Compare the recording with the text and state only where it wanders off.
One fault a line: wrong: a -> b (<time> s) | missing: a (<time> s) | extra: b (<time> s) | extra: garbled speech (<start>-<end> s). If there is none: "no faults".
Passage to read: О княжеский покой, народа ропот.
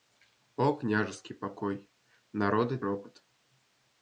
no faults